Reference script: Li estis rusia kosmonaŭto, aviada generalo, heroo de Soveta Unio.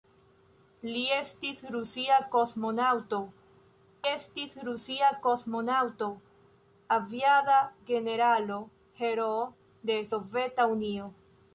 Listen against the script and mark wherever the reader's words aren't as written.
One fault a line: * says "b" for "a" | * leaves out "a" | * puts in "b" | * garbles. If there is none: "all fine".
* puts in "estis rusia kosmonaŭto"